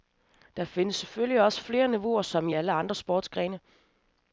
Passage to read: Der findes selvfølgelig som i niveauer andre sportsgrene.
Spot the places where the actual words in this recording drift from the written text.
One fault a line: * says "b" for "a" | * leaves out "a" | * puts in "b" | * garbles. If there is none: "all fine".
* puts in "også flere niveauer"
* says "alle" for "niveauer"